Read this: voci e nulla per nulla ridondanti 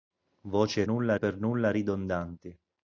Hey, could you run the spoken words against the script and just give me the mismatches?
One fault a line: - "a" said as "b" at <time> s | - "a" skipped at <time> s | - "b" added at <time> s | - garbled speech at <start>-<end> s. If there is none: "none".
none